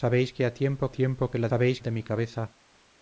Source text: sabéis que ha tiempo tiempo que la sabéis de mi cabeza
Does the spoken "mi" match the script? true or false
true